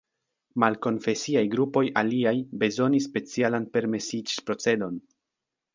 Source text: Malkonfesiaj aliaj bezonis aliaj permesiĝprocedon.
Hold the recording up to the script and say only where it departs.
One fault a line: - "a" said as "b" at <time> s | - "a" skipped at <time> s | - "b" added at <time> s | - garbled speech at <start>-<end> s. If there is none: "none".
- "grupoj" added at 1.5 s
- "aliaj" said as "specialan" at 3.1 s